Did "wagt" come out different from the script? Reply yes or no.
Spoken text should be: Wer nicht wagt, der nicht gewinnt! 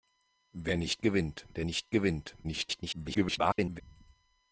yes